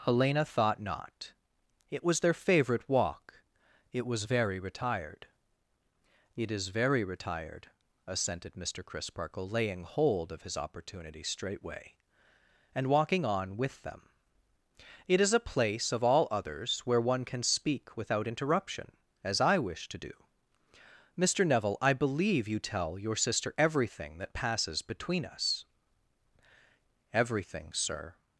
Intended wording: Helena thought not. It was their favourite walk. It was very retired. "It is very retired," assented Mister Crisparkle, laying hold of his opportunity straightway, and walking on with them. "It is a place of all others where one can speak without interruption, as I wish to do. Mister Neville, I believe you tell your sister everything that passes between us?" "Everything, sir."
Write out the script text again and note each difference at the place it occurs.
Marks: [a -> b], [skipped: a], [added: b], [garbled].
Helena thought not. It was their favourite walk. It was very retired. "It is very retired," assented Mister Crisparkle, laying hold of his opportunity straightway, and walking on with them. "It is a place of all others where one can speak without interruption, as I wish to do. Mister Neville, I believe you tell your sister everything that passes between us?" "Everything, sir."